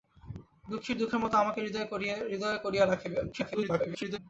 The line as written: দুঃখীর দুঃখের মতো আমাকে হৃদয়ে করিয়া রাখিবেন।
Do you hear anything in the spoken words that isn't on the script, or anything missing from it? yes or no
yes